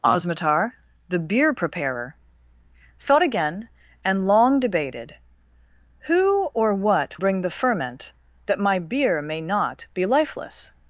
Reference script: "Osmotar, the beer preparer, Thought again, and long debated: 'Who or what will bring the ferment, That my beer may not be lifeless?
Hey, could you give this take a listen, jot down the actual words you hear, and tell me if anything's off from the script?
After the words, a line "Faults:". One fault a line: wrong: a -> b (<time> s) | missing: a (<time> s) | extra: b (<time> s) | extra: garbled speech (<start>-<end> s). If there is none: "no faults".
"Osmotar, the beer preparer, Thought again, and long debated: 'Who or what bring the ferment, That my beer may not be lifeless?
Faults:
missing: will (7.2 s)